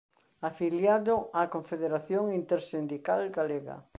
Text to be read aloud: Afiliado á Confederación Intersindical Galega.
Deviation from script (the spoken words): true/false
false